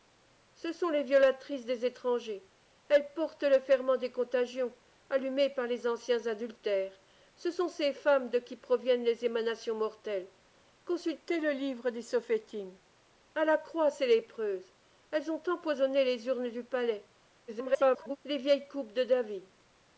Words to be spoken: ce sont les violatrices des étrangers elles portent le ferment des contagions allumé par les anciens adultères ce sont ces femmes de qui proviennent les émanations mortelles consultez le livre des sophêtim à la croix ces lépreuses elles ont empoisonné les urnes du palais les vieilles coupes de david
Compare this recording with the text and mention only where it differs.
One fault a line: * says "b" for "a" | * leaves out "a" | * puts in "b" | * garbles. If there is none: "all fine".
* garbles